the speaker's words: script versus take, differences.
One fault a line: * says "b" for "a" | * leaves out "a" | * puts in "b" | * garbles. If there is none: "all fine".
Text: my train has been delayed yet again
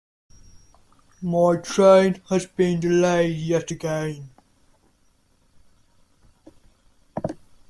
all fine